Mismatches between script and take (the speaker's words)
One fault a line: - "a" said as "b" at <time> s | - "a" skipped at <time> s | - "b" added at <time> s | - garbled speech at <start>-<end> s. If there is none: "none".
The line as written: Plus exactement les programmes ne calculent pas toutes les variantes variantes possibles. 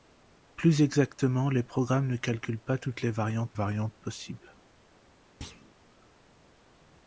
none